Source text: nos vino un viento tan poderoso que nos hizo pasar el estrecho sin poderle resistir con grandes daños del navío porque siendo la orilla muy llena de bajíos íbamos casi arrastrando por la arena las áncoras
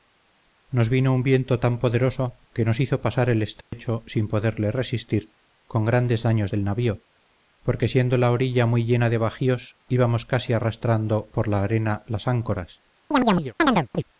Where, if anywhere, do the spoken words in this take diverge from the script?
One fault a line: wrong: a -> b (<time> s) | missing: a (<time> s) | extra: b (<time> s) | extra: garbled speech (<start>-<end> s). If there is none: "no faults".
no faults